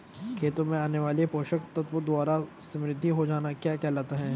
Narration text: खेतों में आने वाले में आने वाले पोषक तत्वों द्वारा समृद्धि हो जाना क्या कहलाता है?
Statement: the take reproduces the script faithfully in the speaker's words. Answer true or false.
false